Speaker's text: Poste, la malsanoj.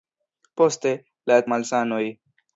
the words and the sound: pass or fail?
pass